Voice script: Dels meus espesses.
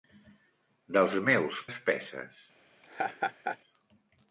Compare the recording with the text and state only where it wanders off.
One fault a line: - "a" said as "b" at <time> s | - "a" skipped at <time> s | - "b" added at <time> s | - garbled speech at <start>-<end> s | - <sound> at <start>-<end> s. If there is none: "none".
- laugh at 2.8-3.6 s